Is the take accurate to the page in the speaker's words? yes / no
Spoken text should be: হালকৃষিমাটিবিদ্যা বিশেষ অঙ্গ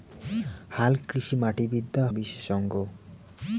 yes